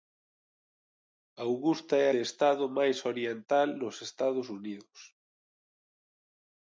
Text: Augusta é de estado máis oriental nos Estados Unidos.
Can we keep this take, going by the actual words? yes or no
yes